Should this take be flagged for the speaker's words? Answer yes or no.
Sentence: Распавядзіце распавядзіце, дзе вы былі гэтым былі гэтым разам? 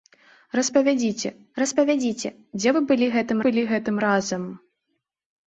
no